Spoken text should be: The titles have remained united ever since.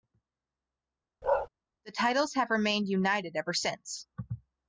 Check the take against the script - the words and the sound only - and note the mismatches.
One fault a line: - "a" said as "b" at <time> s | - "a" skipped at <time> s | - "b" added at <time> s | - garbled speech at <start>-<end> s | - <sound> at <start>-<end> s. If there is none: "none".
- bark at 1.2-1.5 s